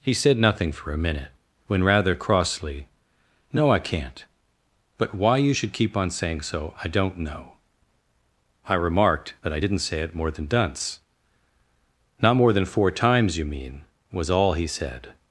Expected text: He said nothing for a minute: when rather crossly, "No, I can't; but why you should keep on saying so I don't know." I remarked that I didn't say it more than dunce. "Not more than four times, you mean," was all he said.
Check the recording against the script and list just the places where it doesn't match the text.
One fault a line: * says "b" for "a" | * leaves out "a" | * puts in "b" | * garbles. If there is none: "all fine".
all fine